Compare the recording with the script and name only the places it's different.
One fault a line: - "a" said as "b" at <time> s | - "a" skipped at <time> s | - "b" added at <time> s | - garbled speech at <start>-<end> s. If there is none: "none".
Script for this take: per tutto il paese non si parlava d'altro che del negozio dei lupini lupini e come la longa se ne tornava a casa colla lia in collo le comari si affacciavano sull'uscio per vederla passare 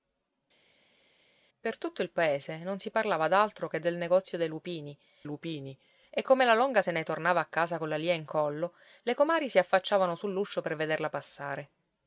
none